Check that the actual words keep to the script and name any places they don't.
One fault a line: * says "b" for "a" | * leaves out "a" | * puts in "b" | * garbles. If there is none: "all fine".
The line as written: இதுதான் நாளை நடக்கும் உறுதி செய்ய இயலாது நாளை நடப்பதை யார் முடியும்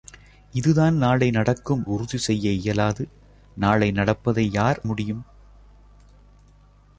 all fine